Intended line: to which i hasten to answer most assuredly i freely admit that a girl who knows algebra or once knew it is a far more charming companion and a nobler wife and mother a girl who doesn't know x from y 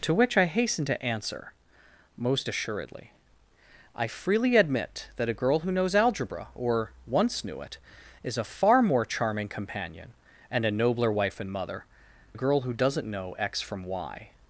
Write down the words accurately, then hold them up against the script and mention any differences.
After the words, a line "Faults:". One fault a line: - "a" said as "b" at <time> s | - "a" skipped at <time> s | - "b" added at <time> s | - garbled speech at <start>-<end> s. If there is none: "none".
to which i hasten to answer most assuredly i freely admit that a girl who knows algebra or once knew it is a far more charming companion and a nobler wife and mother a girl who doesn't know x from y
Faults:
none